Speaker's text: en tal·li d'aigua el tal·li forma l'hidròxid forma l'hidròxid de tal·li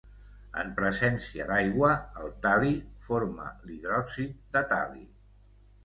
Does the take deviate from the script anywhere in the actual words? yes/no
yes